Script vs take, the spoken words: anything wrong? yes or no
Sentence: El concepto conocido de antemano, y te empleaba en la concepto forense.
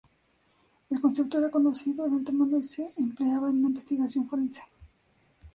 yes